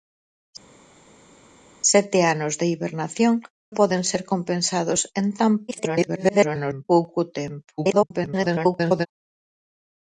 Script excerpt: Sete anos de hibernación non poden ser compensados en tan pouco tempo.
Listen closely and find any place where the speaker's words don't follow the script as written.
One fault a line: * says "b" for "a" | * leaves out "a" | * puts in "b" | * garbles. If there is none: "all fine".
* leaves out "non"
* garbles
* garbles